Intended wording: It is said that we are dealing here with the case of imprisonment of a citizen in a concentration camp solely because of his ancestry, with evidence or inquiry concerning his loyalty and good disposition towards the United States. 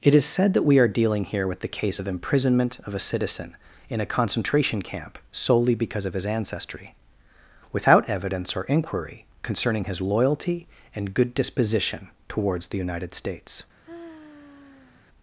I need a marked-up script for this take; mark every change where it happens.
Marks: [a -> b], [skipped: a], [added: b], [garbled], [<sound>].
It is said that we are dealing here with the case of imprisonment of a citizen in a concentration camp solely because of his ancestry, [with -> without] evidence or inquiry concerning his loyalty and good disposition towards the United States. [sigh]